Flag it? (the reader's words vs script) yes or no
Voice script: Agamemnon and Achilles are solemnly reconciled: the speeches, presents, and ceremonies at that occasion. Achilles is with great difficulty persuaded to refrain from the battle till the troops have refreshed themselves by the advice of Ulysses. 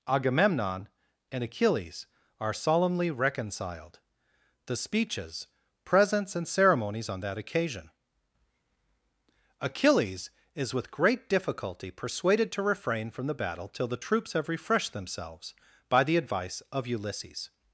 yes